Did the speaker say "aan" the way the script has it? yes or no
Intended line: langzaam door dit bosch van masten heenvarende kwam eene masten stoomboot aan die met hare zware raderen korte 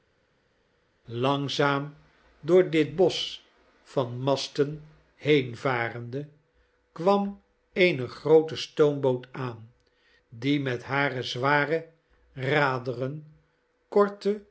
yes